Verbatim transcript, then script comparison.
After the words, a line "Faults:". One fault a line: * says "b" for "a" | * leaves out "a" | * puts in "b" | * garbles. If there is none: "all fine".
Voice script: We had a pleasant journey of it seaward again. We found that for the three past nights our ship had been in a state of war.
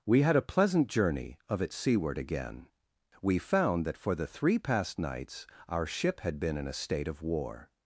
We had a pleasant journey of it seaward again. We found that for the three past nights our ship had been in a state of war.
Faults:
all fine